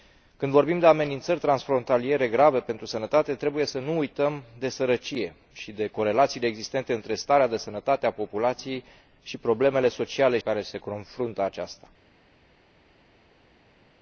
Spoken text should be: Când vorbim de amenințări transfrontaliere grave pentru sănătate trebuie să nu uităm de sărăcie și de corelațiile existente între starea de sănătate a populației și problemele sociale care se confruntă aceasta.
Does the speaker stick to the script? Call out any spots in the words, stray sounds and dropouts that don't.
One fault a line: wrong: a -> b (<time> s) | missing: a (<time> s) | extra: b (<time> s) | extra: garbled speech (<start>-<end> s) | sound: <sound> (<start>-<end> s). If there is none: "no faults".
no faults